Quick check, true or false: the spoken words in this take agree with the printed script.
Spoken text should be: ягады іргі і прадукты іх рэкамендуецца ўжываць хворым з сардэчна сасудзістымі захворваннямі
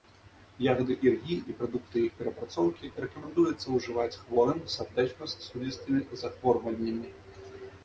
false